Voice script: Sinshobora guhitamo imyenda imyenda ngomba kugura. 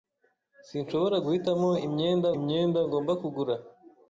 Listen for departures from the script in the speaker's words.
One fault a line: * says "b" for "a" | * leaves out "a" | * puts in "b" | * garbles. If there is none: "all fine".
all fine